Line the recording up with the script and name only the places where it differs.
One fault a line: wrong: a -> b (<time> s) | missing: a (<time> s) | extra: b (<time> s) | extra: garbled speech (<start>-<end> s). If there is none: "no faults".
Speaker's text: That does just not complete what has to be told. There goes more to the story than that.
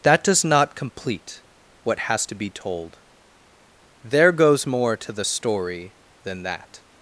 missing: just (0.4 s)